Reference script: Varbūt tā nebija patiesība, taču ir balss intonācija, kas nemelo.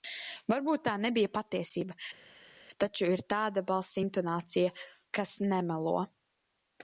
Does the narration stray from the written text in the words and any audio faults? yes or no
yes